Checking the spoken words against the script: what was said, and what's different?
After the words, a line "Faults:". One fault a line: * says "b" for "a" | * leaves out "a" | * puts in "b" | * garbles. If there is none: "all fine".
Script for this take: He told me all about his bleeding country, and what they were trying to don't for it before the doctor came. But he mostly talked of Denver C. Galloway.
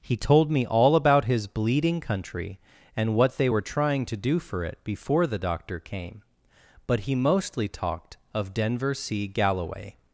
He told me all about his bleeding country, and what they were trying to do for it before the doctor came. But he mostly talked of Denver C. Galloway.
Faults:
* says "do" for "don't"